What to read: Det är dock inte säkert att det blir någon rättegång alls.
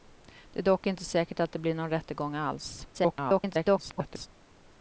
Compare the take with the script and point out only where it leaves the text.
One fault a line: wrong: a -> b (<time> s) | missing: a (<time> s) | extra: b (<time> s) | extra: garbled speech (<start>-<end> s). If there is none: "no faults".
extra: garbled speech (2.9-4.3 s)